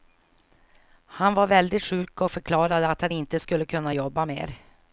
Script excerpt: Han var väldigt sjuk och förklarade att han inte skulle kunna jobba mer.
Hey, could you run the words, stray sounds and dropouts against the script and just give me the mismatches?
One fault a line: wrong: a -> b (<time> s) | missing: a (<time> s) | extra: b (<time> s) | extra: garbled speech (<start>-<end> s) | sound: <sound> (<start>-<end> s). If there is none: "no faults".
no faults